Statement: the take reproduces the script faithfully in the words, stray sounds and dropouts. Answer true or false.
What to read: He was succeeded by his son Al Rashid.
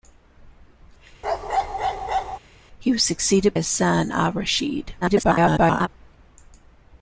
false